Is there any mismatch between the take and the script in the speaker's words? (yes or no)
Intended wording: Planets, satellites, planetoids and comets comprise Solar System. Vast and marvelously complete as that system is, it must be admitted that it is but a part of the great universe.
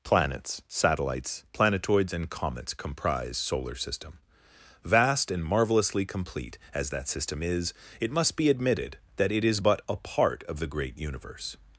no